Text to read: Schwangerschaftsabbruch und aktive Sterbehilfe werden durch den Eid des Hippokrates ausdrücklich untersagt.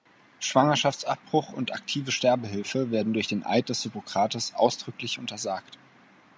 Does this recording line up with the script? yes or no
yes